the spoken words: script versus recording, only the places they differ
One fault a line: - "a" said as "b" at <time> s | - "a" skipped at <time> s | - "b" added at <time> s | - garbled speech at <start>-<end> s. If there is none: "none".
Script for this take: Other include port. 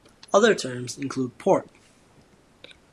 - "terms" added at 0.5 s